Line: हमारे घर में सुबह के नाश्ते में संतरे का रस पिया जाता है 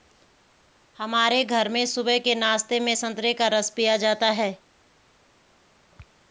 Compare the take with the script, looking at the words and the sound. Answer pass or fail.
pass